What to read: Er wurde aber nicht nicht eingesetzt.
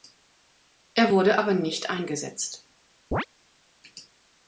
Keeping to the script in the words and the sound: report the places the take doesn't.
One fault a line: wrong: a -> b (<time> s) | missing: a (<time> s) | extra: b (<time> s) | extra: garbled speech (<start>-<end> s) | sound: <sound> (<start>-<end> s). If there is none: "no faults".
missing: nicht (1.9 s)
sound: chirp (3.1-3.3 s)